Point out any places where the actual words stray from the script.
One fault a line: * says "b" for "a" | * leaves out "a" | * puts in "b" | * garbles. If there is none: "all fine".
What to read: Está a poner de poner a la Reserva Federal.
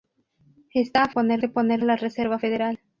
all fine